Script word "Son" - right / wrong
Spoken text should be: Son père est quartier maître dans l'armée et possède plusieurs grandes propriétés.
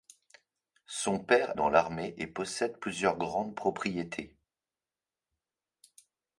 right